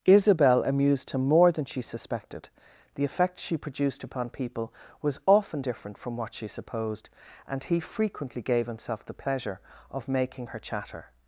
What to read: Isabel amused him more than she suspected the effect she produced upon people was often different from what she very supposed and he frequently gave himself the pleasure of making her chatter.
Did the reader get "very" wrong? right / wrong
wrong